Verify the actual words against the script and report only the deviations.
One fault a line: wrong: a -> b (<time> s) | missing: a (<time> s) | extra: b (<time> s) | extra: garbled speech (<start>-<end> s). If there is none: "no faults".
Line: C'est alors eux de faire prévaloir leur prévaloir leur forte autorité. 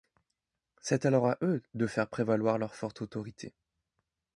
extra: à (1.3 s)
missing: prévaloir leur (2.7 s)